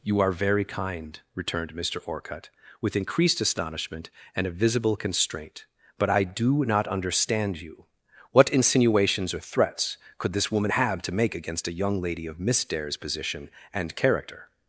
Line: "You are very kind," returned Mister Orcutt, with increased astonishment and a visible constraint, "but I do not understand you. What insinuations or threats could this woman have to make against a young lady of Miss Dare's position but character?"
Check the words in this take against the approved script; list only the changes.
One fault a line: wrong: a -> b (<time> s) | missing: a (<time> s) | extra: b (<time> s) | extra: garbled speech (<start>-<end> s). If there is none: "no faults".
wrong: but -> and (13.7 s)